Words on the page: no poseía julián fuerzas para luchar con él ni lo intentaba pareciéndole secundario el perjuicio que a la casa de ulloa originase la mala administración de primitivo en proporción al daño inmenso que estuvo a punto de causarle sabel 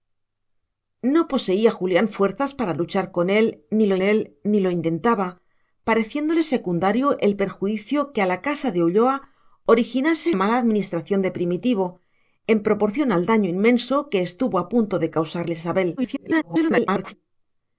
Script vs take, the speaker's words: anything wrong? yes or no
yes